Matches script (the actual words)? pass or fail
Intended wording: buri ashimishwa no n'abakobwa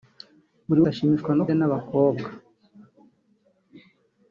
pass